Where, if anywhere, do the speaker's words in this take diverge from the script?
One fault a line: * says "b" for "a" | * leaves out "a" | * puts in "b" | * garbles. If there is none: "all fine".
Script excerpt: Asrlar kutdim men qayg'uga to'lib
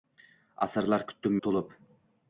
* leaves out "men qayg'uga"